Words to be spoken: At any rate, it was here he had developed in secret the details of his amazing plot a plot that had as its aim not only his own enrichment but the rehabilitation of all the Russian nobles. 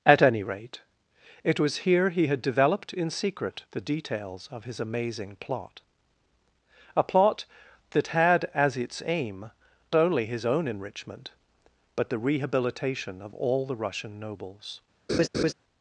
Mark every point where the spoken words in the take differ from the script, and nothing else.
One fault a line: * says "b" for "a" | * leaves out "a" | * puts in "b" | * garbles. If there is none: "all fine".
* leaves out "not"